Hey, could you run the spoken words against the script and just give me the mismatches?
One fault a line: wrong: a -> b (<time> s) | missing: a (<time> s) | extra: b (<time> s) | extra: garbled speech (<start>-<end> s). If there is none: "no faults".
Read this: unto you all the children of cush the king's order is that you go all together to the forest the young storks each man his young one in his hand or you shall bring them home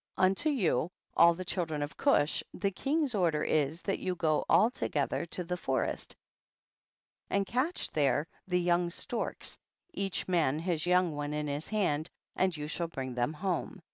extra: and catch there (7.3 s)
wrong: or -> and (12.4 s)